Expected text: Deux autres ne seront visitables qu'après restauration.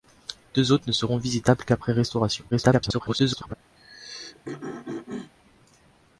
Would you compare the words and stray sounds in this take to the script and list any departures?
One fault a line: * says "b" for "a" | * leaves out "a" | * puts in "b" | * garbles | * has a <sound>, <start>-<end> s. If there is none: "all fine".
* garbles
* has a throat clearing, 3.8-5.3 s